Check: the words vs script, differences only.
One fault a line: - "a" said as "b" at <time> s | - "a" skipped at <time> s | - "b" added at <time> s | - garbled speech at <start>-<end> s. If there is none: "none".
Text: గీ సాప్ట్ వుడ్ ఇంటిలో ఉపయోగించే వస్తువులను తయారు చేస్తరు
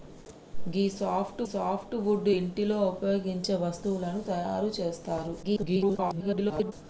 - "సాప్ట్" added at 1.5 s
- garbled speech at 5.4-6.7 s